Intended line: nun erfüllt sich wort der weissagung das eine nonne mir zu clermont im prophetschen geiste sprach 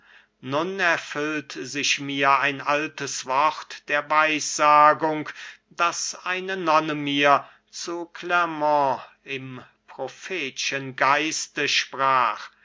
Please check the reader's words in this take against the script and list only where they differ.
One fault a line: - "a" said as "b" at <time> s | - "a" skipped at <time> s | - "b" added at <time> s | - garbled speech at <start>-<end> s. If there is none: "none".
- "mir ein altes" added at 2.0 s